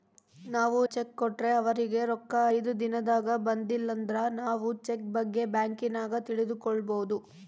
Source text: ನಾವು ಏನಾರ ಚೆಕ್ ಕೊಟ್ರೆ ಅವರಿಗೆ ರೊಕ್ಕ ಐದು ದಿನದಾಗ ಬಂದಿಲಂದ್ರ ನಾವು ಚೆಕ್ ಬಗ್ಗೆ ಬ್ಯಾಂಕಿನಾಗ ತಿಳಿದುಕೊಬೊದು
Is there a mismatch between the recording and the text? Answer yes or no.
yes